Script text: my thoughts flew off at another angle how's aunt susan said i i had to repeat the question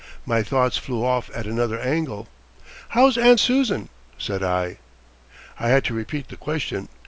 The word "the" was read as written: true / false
true